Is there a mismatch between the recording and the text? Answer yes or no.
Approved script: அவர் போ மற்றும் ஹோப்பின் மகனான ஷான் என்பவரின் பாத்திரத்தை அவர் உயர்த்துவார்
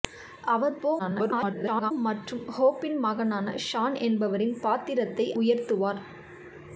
yes